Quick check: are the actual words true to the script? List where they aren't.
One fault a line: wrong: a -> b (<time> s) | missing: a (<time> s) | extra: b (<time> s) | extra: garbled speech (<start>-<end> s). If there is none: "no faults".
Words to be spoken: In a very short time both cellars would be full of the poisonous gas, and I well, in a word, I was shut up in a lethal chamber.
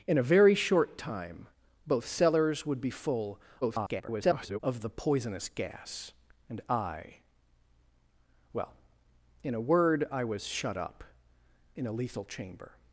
extra: garbled speech (3.6-4.6 s)